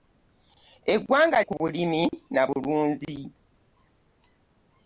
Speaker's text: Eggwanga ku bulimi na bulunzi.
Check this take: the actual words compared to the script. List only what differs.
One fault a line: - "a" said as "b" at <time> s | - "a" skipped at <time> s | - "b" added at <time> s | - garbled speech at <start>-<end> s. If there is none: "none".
none